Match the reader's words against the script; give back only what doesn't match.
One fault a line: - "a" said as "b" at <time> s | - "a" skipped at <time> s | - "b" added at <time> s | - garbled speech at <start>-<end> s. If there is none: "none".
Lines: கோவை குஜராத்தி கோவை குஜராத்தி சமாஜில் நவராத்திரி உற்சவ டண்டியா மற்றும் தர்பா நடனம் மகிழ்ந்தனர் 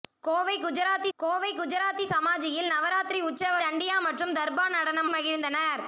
none